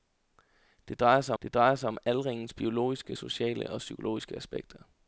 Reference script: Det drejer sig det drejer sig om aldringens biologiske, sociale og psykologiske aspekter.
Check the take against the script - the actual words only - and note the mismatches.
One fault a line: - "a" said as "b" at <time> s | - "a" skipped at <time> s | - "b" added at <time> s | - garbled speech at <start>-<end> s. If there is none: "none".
none